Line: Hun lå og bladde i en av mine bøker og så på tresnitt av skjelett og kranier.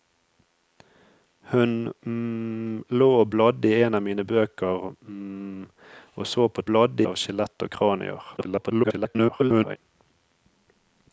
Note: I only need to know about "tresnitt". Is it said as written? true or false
false